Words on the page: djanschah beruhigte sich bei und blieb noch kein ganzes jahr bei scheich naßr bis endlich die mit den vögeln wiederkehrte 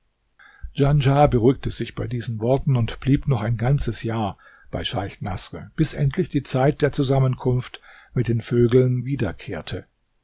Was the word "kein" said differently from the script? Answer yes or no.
yes